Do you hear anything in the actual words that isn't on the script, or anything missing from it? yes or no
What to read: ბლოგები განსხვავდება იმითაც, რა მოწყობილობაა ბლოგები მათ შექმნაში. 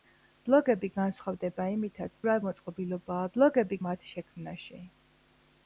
no